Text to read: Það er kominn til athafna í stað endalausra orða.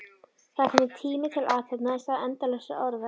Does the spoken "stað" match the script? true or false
true